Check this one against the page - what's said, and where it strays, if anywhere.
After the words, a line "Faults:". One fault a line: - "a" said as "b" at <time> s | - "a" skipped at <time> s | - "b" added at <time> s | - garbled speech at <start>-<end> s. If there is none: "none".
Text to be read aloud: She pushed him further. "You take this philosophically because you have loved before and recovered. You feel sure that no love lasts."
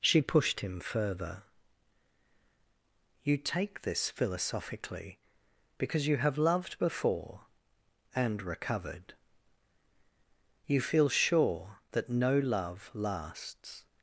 She pushed him further. "You take this philosophically because you have loved before and recovered. You feel sure that no love lasts."
Faults:
none